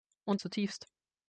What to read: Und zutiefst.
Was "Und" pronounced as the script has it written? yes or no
yes